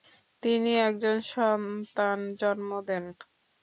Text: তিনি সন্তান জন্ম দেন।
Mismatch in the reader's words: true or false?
true